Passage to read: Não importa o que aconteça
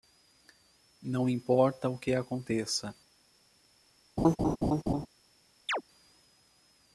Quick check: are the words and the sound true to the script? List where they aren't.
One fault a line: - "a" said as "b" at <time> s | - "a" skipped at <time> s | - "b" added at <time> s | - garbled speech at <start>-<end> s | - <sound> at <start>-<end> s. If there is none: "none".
- laugh at 4.2-5.1 s
- chirp at 5.7-5.8 s